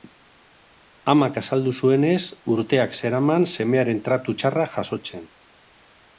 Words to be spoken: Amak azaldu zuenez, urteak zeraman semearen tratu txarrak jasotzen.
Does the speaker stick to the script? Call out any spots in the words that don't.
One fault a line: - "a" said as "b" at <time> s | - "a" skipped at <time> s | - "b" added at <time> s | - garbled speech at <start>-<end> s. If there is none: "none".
none